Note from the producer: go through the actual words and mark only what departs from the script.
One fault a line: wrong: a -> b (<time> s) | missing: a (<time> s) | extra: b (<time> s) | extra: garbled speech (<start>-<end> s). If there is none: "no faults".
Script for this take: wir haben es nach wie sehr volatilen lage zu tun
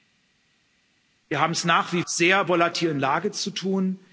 no faults